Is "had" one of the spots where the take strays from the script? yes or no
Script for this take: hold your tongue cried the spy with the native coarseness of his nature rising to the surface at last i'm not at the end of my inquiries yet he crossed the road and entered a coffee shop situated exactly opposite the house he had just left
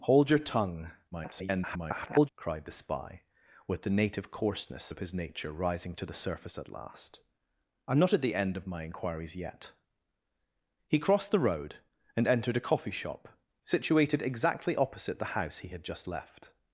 no